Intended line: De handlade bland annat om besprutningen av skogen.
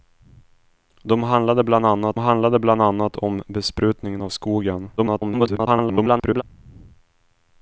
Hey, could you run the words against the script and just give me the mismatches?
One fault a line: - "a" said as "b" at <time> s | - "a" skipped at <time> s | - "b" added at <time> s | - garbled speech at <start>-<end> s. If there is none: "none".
- "handlade bland annat" added at 2.2 s
- garbled speech at 5.0-6.4 s